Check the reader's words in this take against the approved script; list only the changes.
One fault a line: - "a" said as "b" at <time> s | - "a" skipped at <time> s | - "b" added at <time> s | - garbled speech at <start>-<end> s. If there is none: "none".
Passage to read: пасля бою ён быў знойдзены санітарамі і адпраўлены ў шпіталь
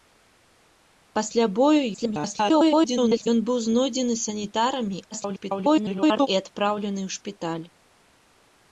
- garbled speech at 1.9-3.3 s
- garbled speech at 5.1-6.3 s